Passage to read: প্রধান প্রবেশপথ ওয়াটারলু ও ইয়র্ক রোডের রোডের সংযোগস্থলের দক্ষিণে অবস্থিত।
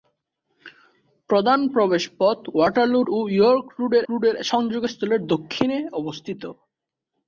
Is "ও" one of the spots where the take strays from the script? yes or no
no